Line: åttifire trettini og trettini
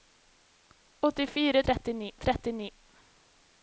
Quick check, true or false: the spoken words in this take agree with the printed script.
true